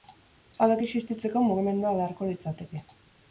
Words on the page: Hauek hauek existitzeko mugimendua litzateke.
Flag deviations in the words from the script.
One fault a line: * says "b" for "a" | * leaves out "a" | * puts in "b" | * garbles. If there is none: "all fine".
* leaves out "hauek"
* puts in "beharko"